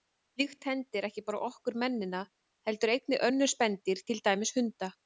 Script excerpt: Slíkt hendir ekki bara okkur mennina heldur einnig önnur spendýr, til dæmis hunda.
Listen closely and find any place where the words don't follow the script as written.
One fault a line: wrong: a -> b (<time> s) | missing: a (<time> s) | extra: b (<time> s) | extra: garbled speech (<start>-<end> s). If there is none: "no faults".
no faults